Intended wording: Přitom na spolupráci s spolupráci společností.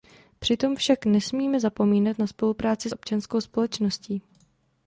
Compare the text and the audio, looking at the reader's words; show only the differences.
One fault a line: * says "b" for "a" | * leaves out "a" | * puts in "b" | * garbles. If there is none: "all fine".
* puts in "však nesmíme zapomínat"
* says "občanskou" for "spolupráci"